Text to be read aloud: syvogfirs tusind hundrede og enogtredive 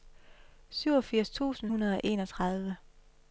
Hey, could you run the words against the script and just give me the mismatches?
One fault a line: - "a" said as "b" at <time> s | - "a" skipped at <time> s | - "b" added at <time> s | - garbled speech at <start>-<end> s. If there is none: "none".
none